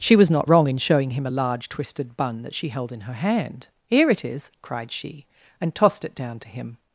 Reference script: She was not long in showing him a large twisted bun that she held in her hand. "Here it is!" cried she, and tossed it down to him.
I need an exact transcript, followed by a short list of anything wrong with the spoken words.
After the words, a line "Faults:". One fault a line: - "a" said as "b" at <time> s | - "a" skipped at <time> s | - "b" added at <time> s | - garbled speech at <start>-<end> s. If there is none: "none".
She was not wrong in showing him a large twisted bun that she held in her hand. "Here it is!" cried she, and tossed it down to him.
Faults:
- "long" said as "wrong" at 0.5 s